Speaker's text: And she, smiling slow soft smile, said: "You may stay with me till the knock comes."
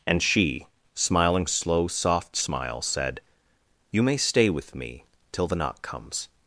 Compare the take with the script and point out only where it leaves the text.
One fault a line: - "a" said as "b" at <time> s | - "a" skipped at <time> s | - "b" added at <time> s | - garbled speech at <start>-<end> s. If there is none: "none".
none